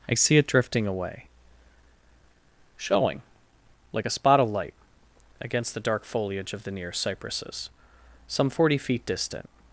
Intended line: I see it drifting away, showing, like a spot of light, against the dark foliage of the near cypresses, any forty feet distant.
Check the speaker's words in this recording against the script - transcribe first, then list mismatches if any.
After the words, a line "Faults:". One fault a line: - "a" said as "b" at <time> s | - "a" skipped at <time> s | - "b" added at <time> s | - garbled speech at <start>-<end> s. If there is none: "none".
I see it drifting away, showing, like a spot of light, against the dark foliage of the near cypresses, some forty feet distant.
Faults:
- "any" said as "some" at 8.3 s